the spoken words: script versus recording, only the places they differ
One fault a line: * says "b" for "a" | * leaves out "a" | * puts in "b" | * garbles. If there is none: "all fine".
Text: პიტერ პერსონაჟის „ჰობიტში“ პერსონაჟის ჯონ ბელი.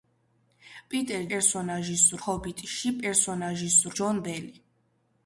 all fine